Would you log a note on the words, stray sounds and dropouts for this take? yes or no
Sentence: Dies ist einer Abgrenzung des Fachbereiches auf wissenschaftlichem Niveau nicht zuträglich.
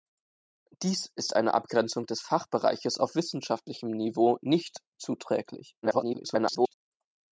yes